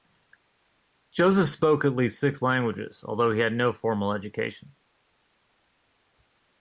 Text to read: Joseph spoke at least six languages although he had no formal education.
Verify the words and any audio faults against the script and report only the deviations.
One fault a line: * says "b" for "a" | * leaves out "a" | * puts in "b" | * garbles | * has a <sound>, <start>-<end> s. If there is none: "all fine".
all fine